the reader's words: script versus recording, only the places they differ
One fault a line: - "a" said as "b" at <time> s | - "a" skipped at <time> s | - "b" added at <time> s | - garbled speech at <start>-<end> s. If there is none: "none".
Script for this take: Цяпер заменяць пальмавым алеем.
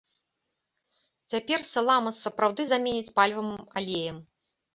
- "саламас сапраўды" added at 1.7 s